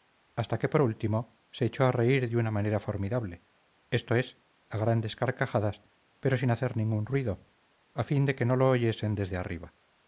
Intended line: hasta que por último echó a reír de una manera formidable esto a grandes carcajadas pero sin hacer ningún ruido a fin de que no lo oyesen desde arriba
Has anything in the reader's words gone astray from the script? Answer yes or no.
yes